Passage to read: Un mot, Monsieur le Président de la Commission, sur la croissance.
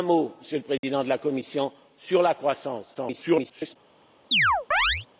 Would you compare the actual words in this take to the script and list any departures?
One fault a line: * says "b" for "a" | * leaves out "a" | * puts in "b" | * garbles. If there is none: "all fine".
* garbles